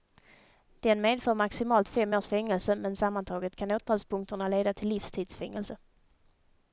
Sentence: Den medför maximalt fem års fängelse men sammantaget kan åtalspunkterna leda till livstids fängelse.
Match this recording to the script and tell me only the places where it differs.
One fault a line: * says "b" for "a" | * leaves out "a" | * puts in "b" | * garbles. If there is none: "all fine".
all fine